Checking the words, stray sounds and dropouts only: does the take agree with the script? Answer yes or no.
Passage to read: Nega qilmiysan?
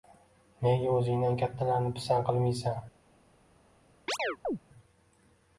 no